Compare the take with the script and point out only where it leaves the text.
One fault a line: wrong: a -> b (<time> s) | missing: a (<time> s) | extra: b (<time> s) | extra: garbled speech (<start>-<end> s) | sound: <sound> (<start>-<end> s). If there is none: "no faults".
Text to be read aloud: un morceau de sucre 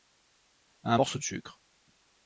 no faults